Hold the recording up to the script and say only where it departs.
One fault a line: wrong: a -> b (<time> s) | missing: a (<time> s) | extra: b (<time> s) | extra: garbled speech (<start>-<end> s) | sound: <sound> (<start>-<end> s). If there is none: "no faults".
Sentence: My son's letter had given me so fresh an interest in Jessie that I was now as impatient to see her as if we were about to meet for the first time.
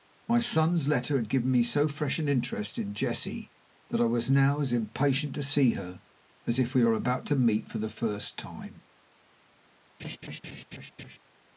sound: laugh (10.0-11.2 s)